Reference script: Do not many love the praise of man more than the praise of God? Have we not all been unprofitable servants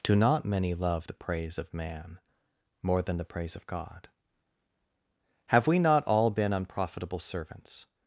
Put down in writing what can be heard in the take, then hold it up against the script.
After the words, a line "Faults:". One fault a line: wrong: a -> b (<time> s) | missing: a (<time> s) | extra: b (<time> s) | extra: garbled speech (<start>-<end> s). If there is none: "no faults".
Do not many love the praise of man more than the praise of God? Have we not all been unprofitable servants
Faults:
no faults